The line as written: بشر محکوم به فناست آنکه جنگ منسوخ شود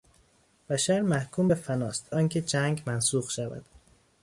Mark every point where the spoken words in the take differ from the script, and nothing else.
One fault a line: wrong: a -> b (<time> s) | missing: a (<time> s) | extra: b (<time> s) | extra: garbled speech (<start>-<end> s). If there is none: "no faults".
no faults